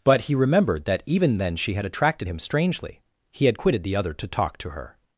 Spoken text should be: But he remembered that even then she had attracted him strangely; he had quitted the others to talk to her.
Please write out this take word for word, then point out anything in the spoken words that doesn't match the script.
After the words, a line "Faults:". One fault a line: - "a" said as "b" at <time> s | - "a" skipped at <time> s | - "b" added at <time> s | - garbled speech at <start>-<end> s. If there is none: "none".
But he remembered that even then she had attracted him strangely; he had quitted the other to talk to her.
Faults:
- "others" said as "other" at 4.0 s